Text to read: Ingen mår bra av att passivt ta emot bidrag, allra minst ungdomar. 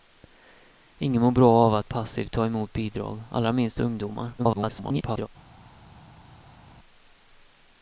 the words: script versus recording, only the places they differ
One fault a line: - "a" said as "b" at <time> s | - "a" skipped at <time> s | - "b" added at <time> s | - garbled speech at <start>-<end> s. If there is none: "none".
- garbled speech at 4.4-5.3 s